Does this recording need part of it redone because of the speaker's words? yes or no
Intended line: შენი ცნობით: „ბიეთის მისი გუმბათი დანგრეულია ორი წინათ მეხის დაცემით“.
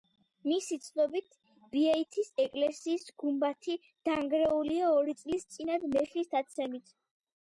yes